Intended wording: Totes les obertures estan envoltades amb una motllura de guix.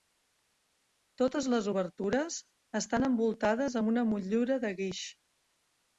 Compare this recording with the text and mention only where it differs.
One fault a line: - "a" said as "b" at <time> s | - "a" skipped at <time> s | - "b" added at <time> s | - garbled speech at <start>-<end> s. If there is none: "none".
none